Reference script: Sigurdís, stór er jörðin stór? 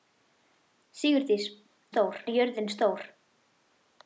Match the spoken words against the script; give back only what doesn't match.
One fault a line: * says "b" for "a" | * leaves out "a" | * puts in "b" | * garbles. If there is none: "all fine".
all fine